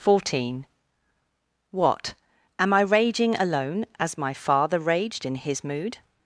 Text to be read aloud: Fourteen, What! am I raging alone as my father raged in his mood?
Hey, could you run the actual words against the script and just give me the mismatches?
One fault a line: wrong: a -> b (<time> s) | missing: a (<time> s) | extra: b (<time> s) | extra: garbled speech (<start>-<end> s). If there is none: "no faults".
no faults